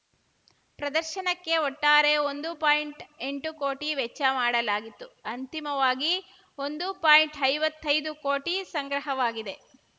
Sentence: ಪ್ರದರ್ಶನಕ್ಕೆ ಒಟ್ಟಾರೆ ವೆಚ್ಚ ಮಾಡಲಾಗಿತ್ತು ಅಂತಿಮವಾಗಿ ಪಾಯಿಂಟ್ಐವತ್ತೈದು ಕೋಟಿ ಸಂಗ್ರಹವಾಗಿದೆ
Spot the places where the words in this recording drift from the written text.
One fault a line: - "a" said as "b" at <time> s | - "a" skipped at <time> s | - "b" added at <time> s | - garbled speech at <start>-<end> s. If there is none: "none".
- "ಒಂದು ಪಾಯಿಂಟ್ಎಂಟು ಕೋಟಿ" added at 2.2 s
- "ಒಂದು" added at 6.6 s